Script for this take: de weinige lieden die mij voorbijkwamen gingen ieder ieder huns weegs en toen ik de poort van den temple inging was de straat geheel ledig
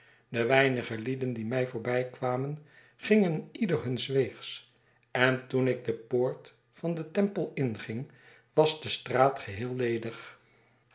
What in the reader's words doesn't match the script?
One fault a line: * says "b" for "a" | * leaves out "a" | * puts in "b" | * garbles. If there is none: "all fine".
* leaves out "ieder"